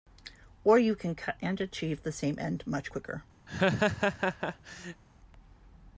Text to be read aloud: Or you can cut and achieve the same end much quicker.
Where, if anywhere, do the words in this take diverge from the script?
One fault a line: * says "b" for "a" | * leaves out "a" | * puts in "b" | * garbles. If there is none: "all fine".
all fine